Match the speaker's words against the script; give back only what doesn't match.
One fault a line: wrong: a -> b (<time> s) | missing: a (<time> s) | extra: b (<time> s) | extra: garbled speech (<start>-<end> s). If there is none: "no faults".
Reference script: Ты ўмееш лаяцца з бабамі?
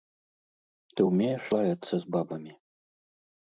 no faults